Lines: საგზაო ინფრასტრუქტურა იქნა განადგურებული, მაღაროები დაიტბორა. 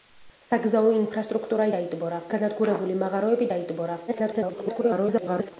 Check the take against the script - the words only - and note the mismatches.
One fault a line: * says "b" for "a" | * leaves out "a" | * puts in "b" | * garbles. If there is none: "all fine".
* says "დაიტბორა" for "იქნა"
* garbles